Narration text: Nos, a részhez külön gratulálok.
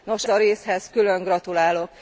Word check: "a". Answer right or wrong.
right